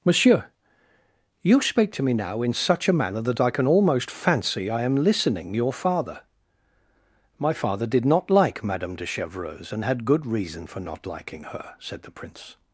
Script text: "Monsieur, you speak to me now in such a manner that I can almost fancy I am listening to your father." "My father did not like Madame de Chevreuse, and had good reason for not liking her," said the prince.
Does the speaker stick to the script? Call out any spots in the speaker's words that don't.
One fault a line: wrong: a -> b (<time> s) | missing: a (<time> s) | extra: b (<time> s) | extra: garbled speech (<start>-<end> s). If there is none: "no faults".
missing: to (5.5 s)